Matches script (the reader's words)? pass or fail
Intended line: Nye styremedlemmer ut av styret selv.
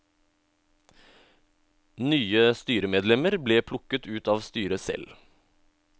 fail